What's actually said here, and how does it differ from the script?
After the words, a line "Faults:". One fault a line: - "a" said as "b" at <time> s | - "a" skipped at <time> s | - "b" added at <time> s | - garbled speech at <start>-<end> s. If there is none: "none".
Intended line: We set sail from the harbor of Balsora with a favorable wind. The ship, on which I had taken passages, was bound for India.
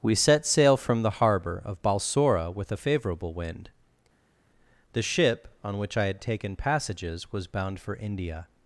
We set sail from the harbor of Balsora with a favorable wind. The ship, on which I had taken passages, was bound for India.
Faults:
none